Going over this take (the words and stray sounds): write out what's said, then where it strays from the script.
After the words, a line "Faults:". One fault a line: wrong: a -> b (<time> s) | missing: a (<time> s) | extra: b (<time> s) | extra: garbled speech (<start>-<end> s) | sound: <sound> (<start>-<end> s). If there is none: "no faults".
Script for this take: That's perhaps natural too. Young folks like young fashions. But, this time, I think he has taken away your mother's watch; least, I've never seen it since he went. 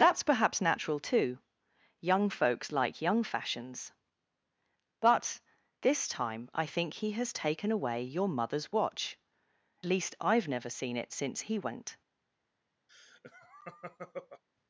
That's perhaps natural too. Young folks like young fashions. But, this time, I think he has taken away your mother's watch; least, I've never seen it since he went.
Faults:
sound: laugh (12.9-14.4 s)